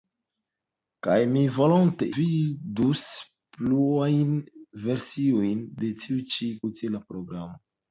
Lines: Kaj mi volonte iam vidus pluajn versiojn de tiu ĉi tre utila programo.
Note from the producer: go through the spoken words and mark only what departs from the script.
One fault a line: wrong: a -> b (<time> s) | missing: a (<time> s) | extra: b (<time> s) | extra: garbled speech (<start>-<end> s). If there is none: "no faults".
missing: iam (2.1 s)
missing: tre (6.5 s)